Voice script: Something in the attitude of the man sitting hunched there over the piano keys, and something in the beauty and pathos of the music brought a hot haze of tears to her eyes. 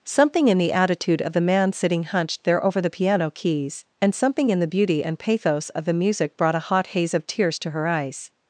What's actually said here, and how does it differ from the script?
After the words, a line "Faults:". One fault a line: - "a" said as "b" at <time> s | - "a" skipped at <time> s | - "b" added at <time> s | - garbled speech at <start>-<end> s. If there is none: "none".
Something in the attitude of the man sitting hunched there over the piano keys, and something in the beauty and pathos of the music brought a hot haze of tears to her eyes.
Faults:
none